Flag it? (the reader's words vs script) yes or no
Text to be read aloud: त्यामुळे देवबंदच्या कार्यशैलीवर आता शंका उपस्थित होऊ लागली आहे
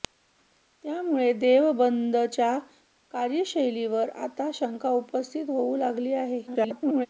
yes